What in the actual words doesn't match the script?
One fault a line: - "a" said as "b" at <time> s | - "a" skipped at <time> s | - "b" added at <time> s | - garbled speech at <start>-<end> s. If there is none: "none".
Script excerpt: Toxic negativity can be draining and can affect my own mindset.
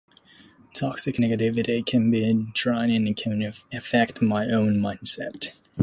none